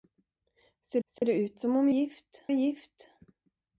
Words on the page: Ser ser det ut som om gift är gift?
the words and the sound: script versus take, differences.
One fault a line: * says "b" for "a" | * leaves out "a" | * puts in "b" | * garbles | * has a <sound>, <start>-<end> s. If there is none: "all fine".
* has a dropout, 1.2-1.2 s